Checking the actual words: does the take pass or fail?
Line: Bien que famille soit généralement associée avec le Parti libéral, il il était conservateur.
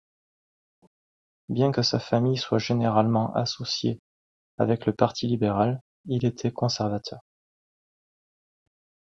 fail